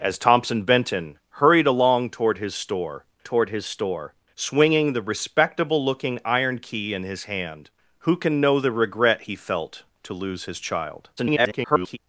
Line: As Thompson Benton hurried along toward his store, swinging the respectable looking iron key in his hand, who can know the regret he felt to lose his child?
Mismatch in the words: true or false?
true